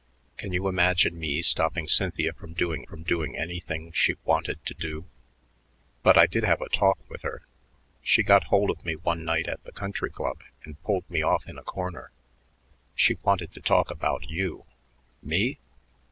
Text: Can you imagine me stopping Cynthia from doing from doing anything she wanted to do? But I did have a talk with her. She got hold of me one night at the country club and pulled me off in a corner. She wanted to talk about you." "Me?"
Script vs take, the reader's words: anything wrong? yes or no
no